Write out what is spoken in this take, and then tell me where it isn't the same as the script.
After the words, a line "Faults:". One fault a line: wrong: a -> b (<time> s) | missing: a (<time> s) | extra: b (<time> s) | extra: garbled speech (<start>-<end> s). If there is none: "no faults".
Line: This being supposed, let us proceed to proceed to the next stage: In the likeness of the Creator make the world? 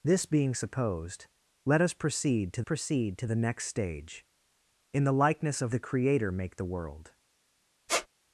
This being supposed, let us proceed to proceed to the next stage: In the likeness of the Creator make the world?
Faults:
no faults